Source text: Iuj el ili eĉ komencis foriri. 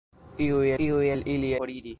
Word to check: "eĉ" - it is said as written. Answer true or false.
false